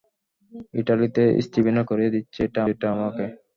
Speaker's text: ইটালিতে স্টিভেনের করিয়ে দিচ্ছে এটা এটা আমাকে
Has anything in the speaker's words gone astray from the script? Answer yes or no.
no